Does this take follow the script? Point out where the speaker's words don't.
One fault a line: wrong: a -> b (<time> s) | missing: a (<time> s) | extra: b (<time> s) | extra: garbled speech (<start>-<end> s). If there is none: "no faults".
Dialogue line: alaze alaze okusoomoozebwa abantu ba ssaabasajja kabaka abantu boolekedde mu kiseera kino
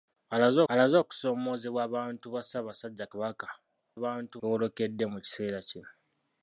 no faults